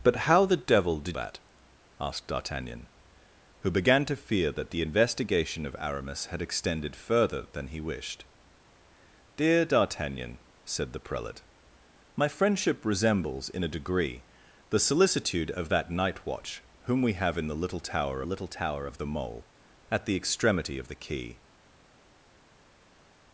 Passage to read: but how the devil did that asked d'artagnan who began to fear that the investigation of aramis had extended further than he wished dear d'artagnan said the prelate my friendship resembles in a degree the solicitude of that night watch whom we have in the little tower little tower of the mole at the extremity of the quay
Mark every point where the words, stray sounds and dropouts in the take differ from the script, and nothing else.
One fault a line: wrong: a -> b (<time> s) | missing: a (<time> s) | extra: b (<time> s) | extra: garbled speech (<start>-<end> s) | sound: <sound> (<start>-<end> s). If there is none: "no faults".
no faults